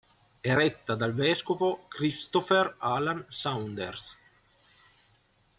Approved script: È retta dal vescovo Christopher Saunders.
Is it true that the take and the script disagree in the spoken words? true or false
true